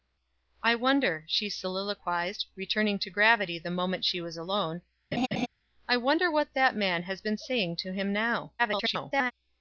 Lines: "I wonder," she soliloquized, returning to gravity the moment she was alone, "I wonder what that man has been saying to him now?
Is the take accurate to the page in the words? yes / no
no